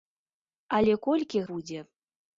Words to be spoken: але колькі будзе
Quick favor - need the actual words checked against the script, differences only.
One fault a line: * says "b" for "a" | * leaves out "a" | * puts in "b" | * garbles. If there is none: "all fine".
all fine